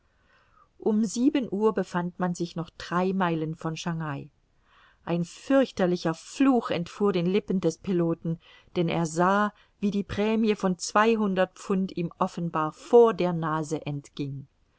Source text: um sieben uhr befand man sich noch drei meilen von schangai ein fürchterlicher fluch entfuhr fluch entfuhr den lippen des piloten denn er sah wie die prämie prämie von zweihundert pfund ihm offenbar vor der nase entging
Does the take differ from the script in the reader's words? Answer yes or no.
yes